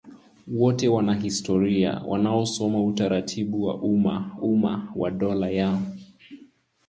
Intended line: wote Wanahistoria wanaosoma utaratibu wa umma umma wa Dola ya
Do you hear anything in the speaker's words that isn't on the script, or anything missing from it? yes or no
no